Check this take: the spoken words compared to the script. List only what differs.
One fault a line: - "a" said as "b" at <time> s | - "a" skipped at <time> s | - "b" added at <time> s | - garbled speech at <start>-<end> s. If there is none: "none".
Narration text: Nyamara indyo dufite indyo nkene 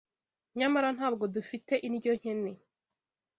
- "indyo" said as "ntabwo" at 1.0 s